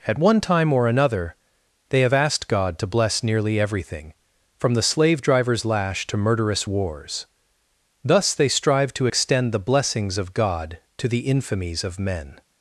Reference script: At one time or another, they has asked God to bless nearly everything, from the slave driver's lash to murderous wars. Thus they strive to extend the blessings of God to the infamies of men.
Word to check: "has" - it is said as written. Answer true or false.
false